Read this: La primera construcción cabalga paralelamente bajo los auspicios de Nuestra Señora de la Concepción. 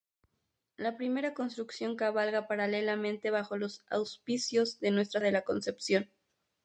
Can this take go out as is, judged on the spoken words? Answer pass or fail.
fail